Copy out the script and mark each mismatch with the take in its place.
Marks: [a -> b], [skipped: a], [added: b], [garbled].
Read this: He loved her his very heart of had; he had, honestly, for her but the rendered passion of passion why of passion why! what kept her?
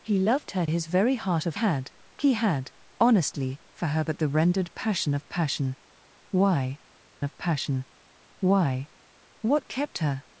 He loved her his very heart of had; he had, honestly, for her but the rendered passion of passion why of passion why! what kept her?